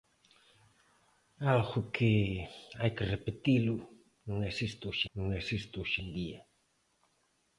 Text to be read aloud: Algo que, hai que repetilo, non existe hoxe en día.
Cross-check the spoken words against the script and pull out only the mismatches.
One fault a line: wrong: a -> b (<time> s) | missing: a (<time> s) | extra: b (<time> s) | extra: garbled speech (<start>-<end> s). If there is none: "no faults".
extra: non existe hoxe (5.2 s)